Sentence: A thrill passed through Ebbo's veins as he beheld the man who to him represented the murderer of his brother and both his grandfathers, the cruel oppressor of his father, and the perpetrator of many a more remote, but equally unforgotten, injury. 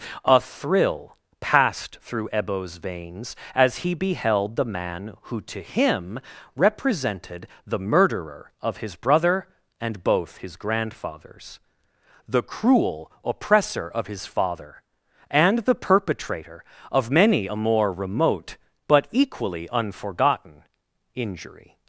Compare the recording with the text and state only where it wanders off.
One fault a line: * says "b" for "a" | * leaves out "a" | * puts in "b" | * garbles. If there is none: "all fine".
all fine